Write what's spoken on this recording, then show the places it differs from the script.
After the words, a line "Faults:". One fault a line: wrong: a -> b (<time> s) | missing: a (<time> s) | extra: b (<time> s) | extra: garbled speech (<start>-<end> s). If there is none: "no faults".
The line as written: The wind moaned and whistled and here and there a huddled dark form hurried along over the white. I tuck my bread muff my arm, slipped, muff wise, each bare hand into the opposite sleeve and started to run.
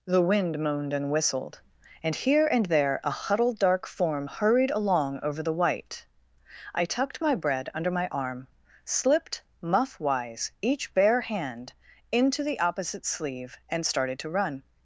The wind moaned and whistled and here and there a huddled dark form hurried along over the white. I tucked my bread under my arm, slipped, muff wise, each bare hand into the opposite sleeve and started to run.
Faults:
wrong: tuck -> tucked (6.8 s)
wrong: muff -> under (7.8 s)